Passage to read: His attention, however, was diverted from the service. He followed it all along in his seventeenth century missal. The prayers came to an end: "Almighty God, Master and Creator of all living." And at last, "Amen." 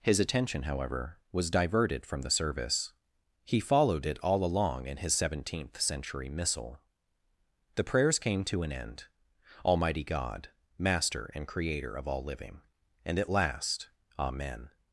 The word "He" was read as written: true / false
true